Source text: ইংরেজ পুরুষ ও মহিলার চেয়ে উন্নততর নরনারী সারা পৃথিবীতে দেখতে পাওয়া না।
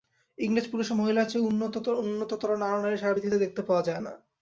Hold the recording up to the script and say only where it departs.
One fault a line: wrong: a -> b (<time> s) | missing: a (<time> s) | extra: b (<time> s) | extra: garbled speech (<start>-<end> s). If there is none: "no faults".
extra: যায় (3.9 s)